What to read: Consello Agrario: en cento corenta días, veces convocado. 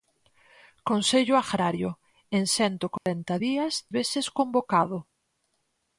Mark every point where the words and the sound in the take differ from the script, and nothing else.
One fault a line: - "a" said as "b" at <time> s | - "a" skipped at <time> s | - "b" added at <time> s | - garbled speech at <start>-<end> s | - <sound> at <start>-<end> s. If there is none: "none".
- dropout at 3.0-3.1 s